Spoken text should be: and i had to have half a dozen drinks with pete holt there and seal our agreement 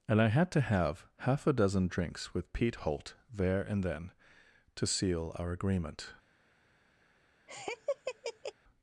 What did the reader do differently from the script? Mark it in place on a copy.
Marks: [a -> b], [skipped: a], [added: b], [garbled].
and i had to have half a dozen drinks with pete holt there and [added: then to] seal our agreement